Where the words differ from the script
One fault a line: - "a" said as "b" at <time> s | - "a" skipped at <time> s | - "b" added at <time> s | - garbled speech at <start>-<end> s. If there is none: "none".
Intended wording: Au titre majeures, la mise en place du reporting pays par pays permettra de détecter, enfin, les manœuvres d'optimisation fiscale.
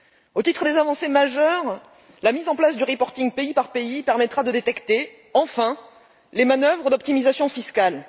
- "des avancées" added at 0.6 s